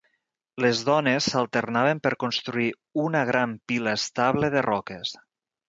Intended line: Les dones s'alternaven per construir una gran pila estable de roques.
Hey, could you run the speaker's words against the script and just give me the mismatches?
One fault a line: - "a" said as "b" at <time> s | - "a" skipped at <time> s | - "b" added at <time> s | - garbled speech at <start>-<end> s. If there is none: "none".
none